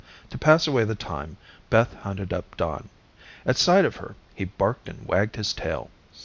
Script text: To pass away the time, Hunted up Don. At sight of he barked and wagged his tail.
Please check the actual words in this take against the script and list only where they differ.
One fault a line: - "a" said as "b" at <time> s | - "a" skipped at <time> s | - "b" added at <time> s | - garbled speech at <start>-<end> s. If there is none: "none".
- "Beth" added at 1.7 s
- "her" added at 4.0 s